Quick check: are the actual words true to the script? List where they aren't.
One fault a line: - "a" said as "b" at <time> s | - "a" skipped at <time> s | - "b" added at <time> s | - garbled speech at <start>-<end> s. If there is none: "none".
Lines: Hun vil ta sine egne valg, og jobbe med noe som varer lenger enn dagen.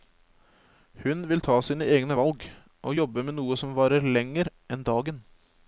none